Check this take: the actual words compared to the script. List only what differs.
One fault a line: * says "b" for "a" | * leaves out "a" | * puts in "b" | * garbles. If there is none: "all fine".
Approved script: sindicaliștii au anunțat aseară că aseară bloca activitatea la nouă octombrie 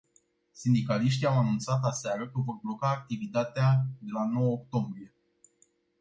* says "vor" for "aseară"
* puts in "de"